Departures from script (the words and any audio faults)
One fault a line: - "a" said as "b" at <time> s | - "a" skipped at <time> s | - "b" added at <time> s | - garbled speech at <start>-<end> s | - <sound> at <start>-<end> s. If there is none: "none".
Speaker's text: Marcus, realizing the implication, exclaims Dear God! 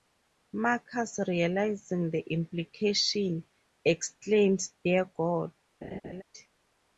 - laugh at 5.8-6.2 s